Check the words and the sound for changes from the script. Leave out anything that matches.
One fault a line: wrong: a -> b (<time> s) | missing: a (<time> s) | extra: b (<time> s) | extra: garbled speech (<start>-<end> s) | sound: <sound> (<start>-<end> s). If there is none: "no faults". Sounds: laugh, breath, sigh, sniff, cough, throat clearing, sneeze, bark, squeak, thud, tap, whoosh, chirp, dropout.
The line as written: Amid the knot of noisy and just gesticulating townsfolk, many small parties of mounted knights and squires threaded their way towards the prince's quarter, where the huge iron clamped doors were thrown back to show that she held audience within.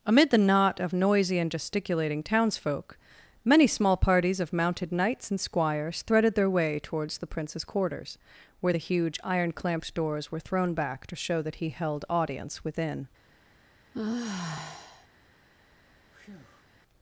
missing: just (1.5 s)
wrong: quarter -> quarters (7.6 s)
wrong: she -> he (11.6 s)
sound: sigh (13.9-15.1 s)
sound: breath (16.1-16.6 s)